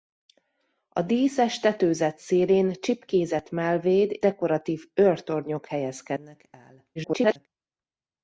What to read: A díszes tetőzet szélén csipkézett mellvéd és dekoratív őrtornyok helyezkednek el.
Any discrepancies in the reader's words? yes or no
yes